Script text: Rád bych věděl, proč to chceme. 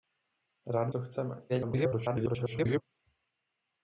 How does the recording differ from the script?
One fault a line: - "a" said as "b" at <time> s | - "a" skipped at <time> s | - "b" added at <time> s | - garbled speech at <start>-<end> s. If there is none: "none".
- "bych věděl proč" skipped at 0.9 s
- garbled speech at 1.5-2.8 s